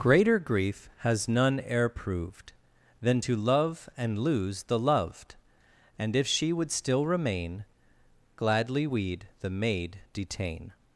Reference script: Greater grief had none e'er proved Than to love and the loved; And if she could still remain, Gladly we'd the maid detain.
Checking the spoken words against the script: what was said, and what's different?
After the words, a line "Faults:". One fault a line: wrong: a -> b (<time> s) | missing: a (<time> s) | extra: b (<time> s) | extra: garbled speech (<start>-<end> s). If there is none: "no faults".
Greater grief has none e'er proved Than to love and lose the loved; And if she would still remain, Gladly we'd the maid detain.
Faults:
wrong: had -> has (1.0 s)
extra: lose (4.2 s)
wrong: could -> would (6.5 s)